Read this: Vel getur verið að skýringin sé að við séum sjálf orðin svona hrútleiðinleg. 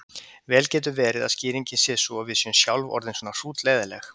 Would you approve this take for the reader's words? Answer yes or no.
no